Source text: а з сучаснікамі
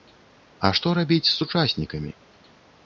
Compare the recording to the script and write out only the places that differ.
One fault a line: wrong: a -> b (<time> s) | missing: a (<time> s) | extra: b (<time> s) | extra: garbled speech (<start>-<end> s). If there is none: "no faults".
extra: што рабіць (0.8 s)